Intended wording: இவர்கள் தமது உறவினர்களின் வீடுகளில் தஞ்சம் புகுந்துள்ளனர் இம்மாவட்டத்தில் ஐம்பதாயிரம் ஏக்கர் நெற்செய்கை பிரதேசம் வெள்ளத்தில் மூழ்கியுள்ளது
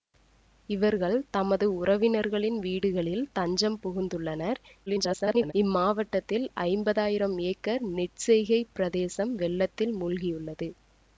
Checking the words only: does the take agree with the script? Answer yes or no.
no